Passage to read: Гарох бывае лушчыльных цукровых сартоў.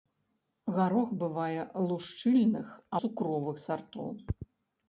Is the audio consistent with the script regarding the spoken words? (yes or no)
yes